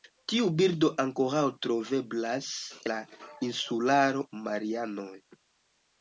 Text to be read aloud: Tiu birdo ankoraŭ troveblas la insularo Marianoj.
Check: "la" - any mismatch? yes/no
no